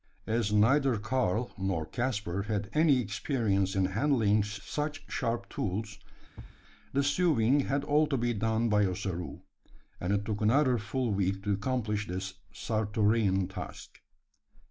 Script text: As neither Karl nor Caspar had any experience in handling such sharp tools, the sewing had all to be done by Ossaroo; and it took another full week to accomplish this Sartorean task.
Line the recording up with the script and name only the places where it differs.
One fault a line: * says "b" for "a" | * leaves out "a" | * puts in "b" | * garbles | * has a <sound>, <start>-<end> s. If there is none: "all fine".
* has a thud, 6.4-6.6 s